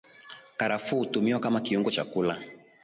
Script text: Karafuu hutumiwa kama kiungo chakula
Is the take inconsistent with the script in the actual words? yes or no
no